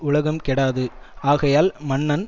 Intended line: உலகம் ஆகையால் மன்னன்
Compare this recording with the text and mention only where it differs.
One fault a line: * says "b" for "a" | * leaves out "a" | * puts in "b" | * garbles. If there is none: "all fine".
* puts in "கெடாது"